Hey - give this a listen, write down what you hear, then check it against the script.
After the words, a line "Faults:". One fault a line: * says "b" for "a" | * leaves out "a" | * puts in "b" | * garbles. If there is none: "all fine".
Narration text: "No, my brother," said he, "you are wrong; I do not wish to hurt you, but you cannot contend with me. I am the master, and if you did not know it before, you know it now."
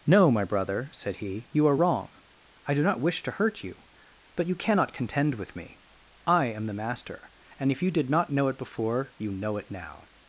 "No, my brother," said he, "you are wrong; I do not wish to hurt you, but you cannot contend with me. I am the master, and if you did not know it before, you know it now."
Faults:
all fine